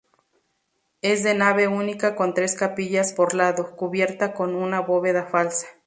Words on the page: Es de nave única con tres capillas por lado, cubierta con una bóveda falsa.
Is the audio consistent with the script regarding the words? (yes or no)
yes